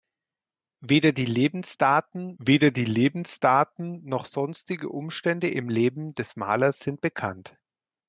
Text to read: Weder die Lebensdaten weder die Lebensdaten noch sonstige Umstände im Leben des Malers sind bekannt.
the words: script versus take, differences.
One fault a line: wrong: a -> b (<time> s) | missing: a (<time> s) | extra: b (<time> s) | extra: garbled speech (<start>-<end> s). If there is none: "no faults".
no faults